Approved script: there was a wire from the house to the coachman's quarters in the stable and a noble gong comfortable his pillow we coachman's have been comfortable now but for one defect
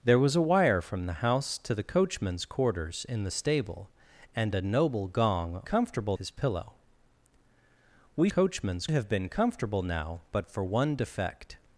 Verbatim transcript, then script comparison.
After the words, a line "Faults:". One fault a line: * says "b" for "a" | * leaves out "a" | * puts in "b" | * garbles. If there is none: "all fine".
there was a wire from the house to the coachman's quarters in the stable and a noble gong comfortable his pillow we coachman's have been comfortable now but for one defect
Faults:
all fine